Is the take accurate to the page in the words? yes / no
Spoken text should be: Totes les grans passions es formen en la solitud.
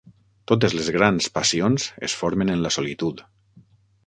yes